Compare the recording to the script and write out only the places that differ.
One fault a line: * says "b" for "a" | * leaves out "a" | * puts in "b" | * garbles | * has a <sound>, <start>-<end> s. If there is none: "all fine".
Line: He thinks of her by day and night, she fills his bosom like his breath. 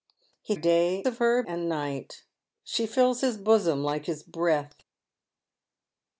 * says "day" for "thinks"
* leaves out "by day"